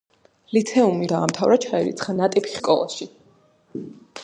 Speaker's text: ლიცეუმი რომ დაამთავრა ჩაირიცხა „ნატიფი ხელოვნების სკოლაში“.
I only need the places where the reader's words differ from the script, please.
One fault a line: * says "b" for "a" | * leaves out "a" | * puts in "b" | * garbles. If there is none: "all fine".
* leaves out "რომ"
* leaves out "ხელოვნების"